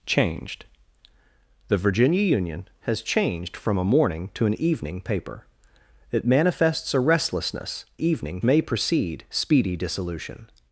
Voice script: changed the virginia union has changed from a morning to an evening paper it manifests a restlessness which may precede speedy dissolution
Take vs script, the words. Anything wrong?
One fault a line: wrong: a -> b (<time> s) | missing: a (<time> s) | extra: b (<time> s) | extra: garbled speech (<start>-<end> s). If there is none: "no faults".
wrong: which -> evening (8.0 s)